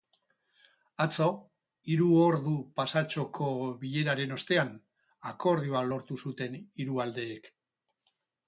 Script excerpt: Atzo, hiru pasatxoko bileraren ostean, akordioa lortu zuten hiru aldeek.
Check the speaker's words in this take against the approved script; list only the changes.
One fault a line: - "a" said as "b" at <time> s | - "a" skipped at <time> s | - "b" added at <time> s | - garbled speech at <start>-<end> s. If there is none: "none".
- "ordu" added at 2.2 s